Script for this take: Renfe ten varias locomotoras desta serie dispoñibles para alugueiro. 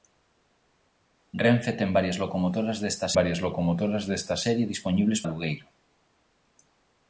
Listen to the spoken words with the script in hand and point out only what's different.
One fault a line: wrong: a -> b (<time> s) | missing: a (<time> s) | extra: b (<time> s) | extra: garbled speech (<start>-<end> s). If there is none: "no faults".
extra: varias locomotoras desta (3.2 s)
missing: para (5.2 s)